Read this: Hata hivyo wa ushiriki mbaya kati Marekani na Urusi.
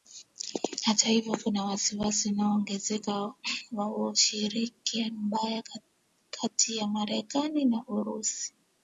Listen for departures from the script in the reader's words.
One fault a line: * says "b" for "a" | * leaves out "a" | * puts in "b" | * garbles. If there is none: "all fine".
* puts in "kuna wasiwasi unaoongezeka"
* puts in "ya"